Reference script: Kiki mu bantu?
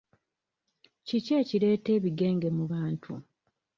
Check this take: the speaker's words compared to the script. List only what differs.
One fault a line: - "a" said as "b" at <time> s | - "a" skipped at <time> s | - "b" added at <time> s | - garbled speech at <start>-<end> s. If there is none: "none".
- "ekireeta ebigenge" added at 1.4 s